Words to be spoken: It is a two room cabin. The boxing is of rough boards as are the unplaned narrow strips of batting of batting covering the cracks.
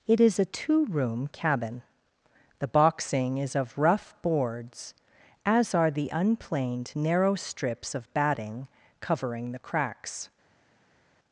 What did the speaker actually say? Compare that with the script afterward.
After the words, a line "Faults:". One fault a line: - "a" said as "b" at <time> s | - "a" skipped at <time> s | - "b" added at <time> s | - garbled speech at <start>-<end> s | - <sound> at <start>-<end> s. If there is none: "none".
It is a two room cabin. The boxing is of rough boards as are the unplaned narrow strips of batting covering the cracks.
Faults:
- "of batting" skipped at 8.7 s